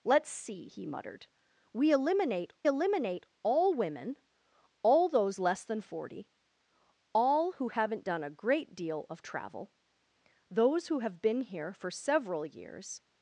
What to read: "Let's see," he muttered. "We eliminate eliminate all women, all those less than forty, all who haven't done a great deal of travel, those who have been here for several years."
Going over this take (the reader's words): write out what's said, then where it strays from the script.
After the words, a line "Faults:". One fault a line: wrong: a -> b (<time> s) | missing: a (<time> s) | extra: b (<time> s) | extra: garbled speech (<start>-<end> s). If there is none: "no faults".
"Let's see," he muttered. "We eliminate eliminate all women, all those less than forty, all who haven't done a great deal of travel, those who have been here for several years."
Faults:
no faults